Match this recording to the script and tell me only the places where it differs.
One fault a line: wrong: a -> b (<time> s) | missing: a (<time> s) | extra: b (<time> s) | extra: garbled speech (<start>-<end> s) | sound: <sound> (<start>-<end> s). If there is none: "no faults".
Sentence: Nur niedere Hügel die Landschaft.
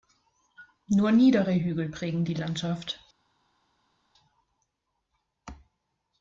extra: prägen (1.9 s)